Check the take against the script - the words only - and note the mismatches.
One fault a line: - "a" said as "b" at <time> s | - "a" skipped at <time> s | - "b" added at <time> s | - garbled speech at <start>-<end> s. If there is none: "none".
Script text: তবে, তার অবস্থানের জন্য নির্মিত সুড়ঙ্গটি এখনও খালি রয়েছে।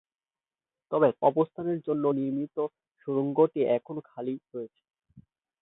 - "তার" skipped at 1.1 s